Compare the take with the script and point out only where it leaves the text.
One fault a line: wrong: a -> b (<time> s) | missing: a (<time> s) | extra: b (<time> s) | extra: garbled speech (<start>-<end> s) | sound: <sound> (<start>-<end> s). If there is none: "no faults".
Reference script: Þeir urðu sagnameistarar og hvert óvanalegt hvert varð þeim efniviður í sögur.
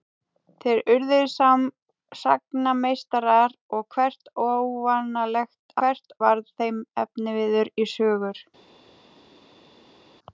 no faults